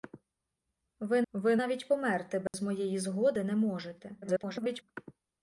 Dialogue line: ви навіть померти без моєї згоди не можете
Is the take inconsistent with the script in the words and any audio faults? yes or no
yes